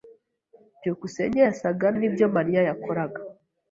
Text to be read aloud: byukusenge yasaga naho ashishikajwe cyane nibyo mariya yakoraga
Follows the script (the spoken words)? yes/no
no